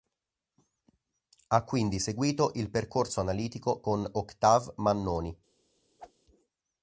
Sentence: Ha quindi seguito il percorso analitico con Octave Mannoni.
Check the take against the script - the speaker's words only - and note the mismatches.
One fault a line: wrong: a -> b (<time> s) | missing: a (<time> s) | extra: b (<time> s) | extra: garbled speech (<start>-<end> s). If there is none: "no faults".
no faults